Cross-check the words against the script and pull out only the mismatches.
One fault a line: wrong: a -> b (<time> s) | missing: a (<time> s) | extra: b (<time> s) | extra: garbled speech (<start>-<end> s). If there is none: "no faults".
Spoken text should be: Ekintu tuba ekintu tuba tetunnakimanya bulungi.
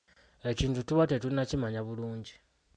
missing: ekintu tuba (1.0 s)